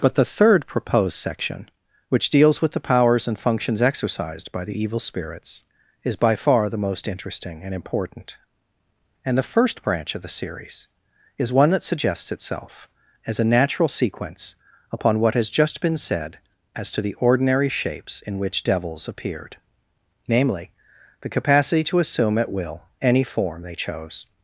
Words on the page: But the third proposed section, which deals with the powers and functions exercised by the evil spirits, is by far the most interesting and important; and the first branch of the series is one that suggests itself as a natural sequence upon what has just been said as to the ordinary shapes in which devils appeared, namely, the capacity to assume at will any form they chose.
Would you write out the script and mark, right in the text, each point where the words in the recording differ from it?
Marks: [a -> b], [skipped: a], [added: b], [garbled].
But the third proposed section, which deals with the powers and functions exercised by the evil spirits, is by far the most interesting and important; and the first branch of the series is one that suggests itself as a natural sequence upon what has just been said as to the ordinary shapes in which devils appeared, namely, the capacity to assume at will any form they chose.